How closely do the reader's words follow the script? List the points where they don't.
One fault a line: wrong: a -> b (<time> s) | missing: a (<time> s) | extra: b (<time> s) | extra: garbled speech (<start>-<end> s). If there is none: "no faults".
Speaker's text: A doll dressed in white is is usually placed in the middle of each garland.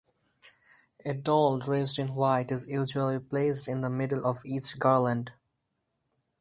missing: is (2.6 s)